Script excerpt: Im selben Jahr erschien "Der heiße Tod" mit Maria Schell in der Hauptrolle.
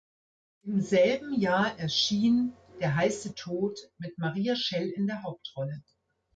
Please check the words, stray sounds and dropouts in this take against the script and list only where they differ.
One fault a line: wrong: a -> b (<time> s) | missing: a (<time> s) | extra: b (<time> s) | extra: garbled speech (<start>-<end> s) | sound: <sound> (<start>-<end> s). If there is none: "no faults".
no faults